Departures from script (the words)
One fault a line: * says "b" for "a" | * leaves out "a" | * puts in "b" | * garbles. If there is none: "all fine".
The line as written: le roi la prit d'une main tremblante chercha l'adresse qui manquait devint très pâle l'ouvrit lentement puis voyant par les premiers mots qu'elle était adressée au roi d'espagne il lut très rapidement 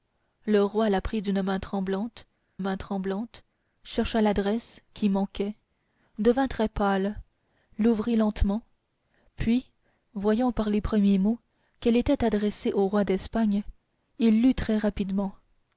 * puts in "main tremblante"